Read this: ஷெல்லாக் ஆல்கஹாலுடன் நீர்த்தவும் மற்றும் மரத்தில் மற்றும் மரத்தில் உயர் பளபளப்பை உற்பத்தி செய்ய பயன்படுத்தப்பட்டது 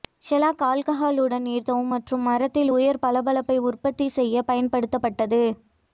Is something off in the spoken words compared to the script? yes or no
yes